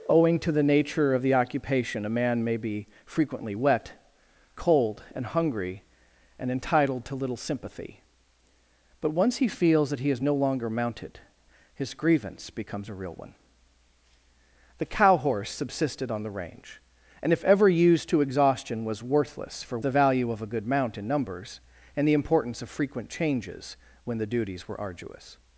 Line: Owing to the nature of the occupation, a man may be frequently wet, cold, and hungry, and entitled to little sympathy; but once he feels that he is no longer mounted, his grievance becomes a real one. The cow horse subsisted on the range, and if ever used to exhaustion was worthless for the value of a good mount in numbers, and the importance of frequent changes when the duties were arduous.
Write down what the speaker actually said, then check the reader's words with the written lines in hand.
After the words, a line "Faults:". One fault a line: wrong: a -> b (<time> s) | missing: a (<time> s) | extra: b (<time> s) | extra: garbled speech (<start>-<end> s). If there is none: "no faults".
Owing to the nature of the occupation, a man may be frequently wet, cold, and hungry, and entitled to little sympathy; but once he feels that he is no longer mounted, his grievance becomes a real one. The cow horse subsisted on the range, and if ever used to exhaustion was worthless for the value of a good mount in numbers, and the importance of frequent changes when the duties were arduous.
Faults:
no faults